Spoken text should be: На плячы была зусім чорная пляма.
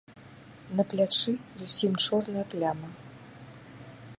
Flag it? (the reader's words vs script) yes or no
yes